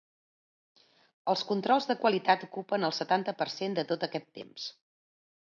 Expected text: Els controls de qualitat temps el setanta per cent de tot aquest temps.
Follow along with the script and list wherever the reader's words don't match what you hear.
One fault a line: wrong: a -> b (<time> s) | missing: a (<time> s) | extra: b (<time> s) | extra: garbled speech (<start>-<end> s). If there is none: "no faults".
wrong: temps -> ocupen (2.5 s)